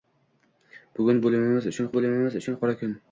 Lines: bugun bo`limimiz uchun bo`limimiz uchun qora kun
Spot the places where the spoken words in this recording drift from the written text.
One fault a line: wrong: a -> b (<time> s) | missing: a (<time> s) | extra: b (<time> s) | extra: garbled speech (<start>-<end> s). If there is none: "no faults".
no faults